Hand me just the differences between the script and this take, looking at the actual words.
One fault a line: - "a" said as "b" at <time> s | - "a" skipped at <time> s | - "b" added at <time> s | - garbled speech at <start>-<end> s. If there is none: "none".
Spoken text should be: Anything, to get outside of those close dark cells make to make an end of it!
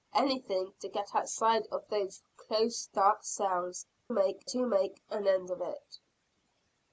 none